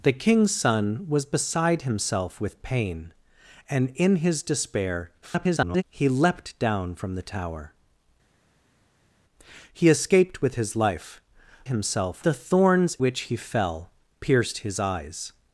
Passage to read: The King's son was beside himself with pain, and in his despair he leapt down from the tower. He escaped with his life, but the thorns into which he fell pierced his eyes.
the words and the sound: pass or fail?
fail